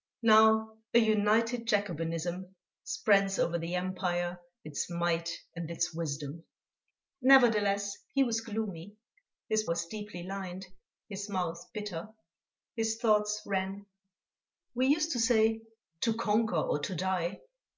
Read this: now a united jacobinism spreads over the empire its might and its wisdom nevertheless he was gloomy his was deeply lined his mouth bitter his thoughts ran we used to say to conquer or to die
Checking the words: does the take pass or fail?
pass